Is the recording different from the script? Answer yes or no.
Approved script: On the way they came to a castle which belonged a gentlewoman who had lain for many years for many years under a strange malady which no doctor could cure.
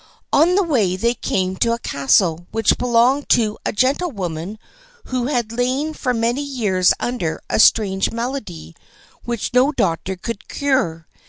yes